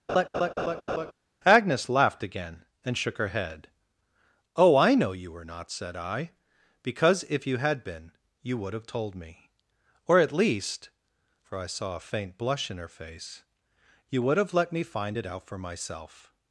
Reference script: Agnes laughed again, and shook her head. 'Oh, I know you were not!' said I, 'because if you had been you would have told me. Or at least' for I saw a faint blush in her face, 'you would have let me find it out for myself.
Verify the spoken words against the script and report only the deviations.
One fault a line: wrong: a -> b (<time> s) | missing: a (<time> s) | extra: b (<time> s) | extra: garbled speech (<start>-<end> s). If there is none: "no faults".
no faults